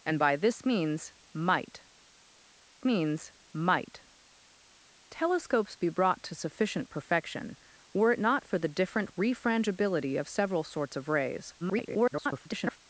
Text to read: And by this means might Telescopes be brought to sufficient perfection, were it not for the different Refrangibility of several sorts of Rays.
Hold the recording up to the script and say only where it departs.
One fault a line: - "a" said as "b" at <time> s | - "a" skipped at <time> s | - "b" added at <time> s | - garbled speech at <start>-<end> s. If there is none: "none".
- "means might" added at 2.8 s
- garbled speech at 11.6-12.8 s